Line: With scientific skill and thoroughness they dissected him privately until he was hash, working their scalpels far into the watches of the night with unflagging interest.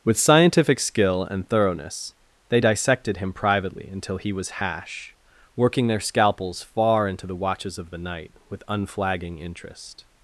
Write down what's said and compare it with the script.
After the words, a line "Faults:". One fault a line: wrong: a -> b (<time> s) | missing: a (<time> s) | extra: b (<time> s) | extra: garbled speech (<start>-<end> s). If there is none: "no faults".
With scientific skill and thoroughness they dissected him privately until he was hash, working their scalpels far into the watches of the night with unflagging interest.
Faults:
no faults